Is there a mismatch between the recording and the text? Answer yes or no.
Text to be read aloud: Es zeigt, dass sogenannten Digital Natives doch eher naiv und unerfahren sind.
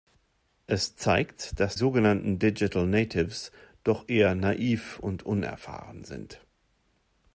no